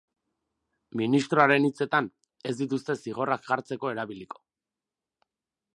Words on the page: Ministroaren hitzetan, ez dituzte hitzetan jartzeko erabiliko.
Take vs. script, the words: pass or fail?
fail